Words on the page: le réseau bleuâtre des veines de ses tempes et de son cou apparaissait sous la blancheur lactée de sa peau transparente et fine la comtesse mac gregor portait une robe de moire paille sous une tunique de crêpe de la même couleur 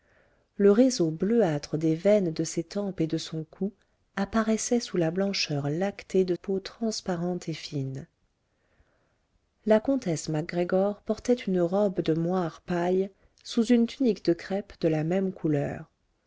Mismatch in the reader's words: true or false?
true